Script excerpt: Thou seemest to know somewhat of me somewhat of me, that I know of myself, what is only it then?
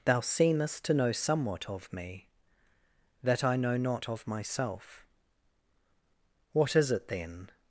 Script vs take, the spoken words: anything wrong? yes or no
yes